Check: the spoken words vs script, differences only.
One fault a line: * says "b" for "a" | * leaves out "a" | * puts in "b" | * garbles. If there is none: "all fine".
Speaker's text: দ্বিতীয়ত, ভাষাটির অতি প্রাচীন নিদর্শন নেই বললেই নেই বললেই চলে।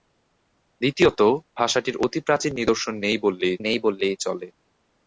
all fine